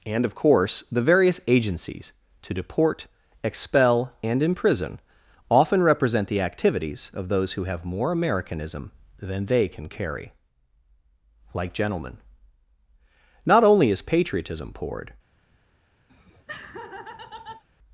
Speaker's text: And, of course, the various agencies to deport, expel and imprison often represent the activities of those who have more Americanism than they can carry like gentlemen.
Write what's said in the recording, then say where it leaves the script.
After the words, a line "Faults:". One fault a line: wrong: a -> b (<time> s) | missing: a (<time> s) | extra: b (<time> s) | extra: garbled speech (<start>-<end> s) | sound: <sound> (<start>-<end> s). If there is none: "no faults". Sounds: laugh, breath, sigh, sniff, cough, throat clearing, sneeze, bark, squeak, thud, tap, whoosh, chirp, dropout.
And, of course, the various agencies to deport, expel and imprison often represent the activities of those who have more Americanism than they can carry like gentlemen. Not only is patriotism poured
Faults:
extra: Not only is patriotism poured (13.4 s)
sound: laugh (16.1-17.6 s)